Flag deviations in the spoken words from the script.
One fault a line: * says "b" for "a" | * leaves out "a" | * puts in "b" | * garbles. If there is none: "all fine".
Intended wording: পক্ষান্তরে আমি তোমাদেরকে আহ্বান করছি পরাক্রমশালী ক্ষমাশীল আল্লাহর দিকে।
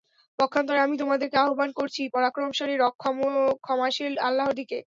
all fine